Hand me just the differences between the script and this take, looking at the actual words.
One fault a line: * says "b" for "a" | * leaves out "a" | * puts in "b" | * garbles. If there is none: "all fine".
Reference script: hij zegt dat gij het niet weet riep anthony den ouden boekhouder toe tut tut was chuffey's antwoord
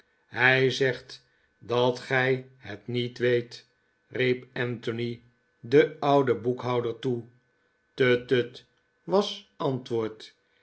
* leaves out "chuffey's"